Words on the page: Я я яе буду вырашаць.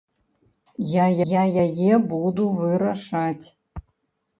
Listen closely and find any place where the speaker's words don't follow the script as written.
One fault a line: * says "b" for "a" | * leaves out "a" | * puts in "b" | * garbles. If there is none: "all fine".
all fine